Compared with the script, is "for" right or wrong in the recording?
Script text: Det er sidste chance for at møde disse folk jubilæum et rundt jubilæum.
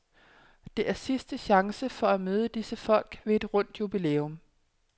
right